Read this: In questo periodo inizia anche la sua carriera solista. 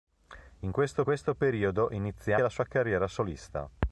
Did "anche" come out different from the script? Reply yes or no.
yes